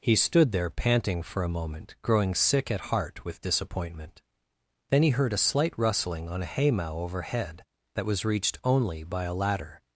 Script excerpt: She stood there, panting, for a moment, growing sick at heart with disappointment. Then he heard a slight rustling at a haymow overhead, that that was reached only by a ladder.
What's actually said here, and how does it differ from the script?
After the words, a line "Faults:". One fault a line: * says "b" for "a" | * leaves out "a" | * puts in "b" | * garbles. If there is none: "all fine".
He stood there, panting, for a moment, growing sick at heart with disappointment. Then he heard a slight rustling on a haymow overhead, that was reached only by a ladder.
Faults:
* says "He" for "She"
* says "on" for "at"
* leaves out "that"